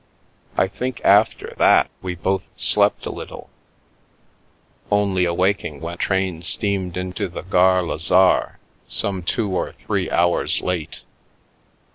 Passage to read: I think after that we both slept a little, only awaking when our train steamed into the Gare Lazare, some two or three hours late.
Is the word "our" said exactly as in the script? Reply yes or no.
no